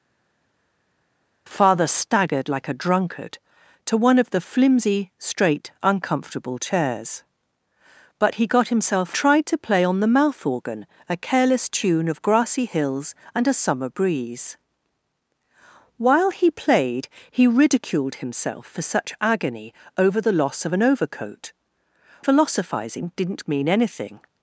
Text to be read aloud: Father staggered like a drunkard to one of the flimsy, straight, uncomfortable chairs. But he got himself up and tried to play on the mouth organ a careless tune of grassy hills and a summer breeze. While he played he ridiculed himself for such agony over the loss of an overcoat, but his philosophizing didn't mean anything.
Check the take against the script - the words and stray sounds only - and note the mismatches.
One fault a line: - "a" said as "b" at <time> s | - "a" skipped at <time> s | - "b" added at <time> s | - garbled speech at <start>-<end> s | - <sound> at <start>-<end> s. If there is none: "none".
- "up and" skipped at 9.2 s
- "but his" skipped at 21.5 s